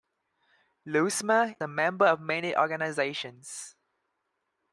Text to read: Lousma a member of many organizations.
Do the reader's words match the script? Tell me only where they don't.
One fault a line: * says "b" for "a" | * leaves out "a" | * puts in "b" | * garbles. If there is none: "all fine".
all fine